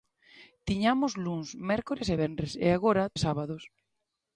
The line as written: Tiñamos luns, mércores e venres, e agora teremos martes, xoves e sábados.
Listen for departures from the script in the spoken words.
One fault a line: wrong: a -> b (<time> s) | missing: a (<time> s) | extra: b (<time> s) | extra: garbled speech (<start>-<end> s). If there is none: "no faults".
missing: teremos martes xoves (3.1 s)